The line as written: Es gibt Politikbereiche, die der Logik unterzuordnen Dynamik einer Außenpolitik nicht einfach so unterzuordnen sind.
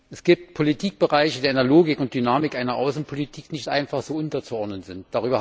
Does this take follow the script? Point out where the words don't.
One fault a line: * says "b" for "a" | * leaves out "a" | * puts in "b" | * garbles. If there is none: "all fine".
* says "und" for "unterzuordnen"